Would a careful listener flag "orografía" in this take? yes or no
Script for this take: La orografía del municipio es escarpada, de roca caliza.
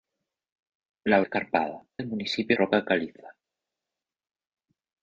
yes